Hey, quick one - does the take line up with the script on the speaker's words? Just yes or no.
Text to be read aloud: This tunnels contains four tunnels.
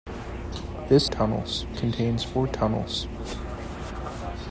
yes